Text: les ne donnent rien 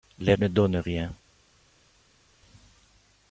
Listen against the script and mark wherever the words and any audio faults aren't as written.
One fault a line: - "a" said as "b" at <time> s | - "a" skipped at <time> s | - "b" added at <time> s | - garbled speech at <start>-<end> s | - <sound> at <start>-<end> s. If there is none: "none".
none